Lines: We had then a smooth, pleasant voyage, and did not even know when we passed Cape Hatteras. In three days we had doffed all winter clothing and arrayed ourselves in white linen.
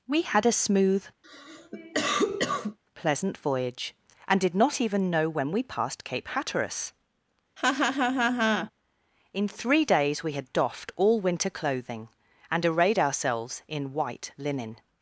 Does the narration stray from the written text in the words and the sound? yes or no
yes